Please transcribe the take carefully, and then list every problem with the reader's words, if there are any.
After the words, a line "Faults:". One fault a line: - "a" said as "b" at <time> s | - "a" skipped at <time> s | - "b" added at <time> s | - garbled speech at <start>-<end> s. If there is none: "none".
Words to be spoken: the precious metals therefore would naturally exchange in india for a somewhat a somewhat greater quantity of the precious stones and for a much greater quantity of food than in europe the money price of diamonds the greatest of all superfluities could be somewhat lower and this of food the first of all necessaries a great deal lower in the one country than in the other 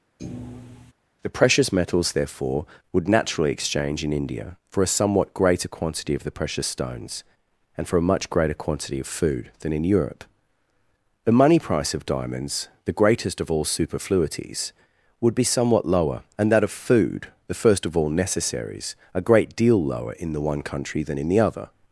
the precious metals therefore would naturally exchange in india for a somewhat greater quantity of the precious stones and for a much greater quantity of food than in europe the money price of diamonds the greatest of all superfluities would be somewhat lower and that of food the first of all necessaries a great deal lower in the one country than in the other
Faults:
- "a somewhat" skipped at 5.3 s
- "could" said as "would" at 15.2 s
- "this" said as "that" at 16.5 s